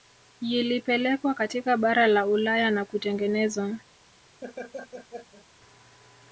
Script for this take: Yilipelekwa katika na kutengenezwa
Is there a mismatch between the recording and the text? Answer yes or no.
yes